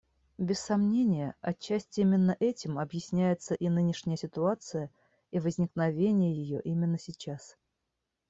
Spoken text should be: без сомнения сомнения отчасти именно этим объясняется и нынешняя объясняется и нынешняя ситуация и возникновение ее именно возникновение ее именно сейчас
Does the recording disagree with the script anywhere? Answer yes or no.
yes